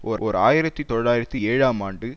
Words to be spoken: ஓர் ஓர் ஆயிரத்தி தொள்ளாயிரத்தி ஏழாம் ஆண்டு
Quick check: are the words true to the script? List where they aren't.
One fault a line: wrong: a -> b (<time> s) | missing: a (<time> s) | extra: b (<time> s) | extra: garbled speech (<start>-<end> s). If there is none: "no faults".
no faults